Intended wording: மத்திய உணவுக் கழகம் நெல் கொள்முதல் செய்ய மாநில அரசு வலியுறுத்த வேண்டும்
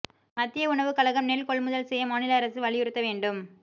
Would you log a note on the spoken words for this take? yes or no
no